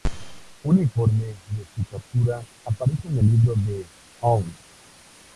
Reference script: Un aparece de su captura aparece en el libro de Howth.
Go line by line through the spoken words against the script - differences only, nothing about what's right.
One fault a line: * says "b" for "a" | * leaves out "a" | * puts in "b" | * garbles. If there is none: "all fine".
* says "informe" for "aparece"